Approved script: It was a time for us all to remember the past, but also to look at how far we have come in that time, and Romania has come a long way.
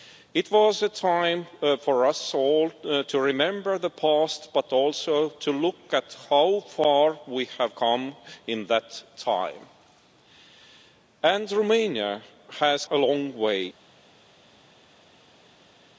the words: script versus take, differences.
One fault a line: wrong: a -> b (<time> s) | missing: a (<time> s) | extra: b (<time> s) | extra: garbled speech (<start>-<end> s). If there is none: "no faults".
missing: come (12.8 s)